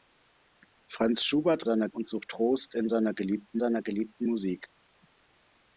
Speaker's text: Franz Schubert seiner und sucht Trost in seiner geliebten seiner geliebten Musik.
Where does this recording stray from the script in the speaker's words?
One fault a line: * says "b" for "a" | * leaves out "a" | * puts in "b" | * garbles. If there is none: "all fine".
all fine